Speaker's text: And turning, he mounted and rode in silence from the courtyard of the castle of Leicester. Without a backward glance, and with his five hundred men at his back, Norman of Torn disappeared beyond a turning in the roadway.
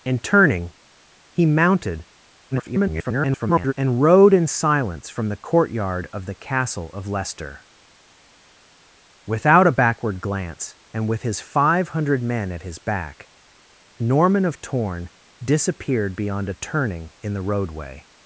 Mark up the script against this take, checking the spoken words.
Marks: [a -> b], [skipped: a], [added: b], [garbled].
And turning, he mounted [garbled] and rode in silence from the courtyard of the castle of Leicester. Without a backward glance, and with his five hundred men at his back, Norman of Torn disappeared beyond a turning in the roadway.